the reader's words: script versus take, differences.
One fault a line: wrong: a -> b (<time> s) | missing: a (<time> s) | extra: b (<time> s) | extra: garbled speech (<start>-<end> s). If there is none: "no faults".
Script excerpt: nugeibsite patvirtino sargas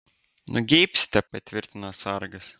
no faults